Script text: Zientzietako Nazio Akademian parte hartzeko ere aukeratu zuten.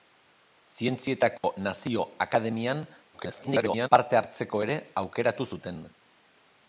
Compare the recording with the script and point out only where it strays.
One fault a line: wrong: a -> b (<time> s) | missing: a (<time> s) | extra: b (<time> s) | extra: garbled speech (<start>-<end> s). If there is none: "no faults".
extra: garbled speech (3.1-3.9 s)